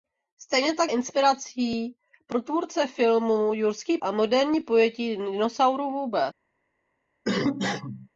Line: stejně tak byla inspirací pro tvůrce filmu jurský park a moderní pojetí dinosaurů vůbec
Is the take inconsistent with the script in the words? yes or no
yes